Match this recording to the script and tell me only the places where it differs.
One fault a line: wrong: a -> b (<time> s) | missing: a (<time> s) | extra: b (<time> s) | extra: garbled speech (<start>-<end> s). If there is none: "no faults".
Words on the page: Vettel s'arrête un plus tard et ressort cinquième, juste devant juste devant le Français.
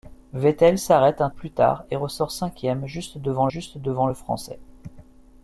no faults